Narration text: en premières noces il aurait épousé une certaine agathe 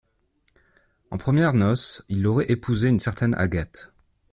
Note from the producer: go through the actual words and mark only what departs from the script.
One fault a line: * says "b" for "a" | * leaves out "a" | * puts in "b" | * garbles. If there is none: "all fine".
all fine